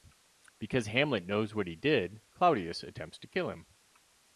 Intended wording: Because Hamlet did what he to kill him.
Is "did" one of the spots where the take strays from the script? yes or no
yes